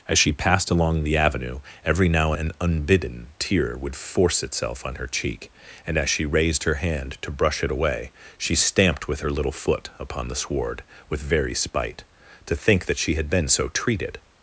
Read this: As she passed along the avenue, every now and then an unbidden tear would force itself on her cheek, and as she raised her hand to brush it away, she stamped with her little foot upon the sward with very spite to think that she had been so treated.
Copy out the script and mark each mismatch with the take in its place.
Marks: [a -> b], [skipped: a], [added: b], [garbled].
As she passed along the avenue, every now [skipped: and then] an unbidden tear would force itself on her cheek, and as she raised her hand to brush it away, she stamped with her little foot upon the sward with very spite to think that she had been so treated.